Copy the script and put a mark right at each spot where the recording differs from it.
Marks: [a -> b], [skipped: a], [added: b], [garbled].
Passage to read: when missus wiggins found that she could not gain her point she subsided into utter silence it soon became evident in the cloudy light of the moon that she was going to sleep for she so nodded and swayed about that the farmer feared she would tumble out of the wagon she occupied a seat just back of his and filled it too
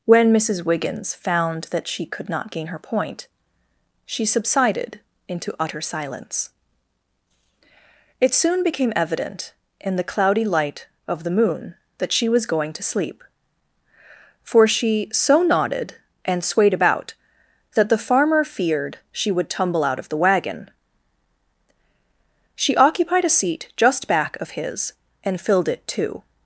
when missus wiggins found that she could not gain her point she subsided into utter silence it soon became evident in the cloudy light of the moon that she was going to sleep for she so nodded and swayed about that the farmer feared she would tumble out of the wagon she occupied a seat just back of his and filled it too